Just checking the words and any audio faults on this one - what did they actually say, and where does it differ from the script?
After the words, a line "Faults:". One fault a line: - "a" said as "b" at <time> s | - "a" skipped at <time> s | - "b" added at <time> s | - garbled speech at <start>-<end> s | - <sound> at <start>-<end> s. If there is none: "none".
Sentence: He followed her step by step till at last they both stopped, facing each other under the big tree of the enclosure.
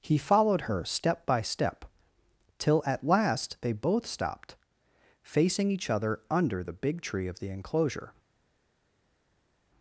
He followed her step by step till at last they both stopped, facing each other under the big tree of the enclosure.
Faults:
none